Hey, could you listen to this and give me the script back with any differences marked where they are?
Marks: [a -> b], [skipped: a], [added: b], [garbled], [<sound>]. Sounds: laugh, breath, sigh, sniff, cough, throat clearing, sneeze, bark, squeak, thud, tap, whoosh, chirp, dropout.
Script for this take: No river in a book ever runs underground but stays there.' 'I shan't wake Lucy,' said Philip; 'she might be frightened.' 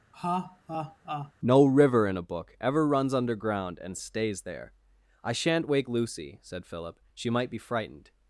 [laugh] No river in a book ever runs underground [but -> and] stays there.' 'I shan't wake Lucy,' said Philip; 'she might be frightened.'